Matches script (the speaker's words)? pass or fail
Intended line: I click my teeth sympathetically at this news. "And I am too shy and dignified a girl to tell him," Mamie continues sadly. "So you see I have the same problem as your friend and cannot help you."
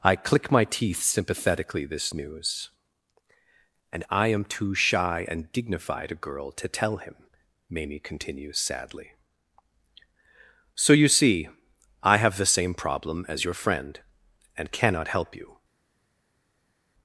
fail